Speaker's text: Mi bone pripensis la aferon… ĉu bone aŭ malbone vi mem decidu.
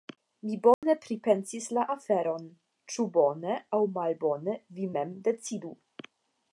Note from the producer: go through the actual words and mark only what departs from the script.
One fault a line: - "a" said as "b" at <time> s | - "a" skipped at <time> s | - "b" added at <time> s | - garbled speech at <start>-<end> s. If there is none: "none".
none